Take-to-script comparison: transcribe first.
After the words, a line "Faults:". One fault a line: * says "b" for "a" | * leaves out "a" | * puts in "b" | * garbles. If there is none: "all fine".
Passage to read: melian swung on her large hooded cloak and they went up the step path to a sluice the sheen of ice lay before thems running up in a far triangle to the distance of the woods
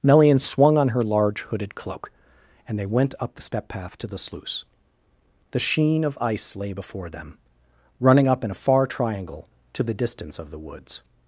melian swung on her large hooded cloak and they went up the step path to the sluice the sheen of ice lay before them running up in a far triangle to the distance of the woods
Faults:
* says "the" for "a"
* says "them" for "thems"